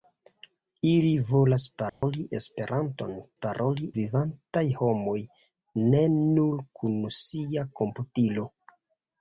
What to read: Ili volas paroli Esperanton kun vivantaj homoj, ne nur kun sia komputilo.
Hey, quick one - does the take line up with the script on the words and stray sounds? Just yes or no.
no